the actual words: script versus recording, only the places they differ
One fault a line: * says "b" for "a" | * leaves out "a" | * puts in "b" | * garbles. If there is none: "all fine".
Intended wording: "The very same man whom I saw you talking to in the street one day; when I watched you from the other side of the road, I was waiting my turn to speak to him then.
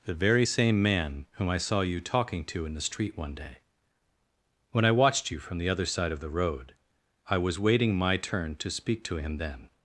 all fine